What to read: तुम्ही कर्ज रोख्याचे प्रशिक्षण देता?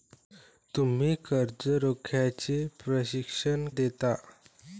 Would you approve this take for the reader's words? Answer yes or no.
yes